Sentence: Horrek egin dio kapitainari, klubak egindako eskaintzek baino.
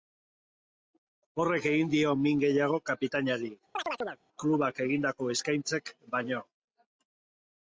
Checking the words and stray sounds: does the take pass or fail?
fail